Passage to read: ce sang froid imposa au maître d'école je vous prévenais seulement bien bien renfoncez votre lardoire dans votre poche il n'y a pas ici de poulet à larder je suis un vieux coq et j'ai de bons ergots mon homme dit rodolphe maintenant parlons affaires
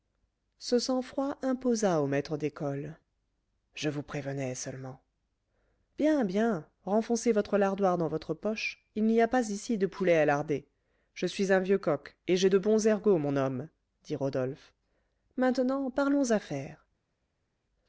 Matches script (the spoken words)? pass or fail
pass